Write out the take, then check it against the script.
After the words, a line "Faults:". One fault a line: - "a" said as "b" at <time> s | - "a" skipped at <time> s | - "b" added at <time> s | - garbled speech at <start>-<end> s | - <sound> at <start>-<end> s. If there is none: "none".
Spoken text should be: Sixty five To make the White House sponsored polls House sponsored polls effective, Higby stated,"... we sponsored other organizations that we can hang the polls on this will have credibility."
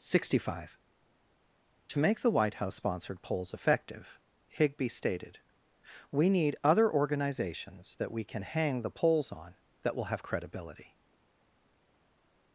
Sixty five To make the White House sponsored polls effective, Higby stated,"... we need other organizations that we can hang the polls on that will have credibility."
Faults:
- "House sponsored polls" skipped at 3.5 s
- "sponsored" said as "need" at 6.3 s
- "this" said as "that" at 9.8 s